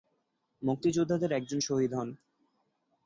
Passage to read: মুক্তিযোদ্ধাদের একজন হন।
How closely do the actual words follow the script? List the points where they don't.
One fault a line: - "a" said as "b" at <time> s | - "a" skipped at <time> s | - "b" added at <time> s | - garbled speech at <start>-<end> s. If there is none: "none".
- "শহীদ" added at 1.6 s